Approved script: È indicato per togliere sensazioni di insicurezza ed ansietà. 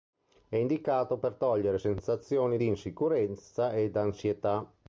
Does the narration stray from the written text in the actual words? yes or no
no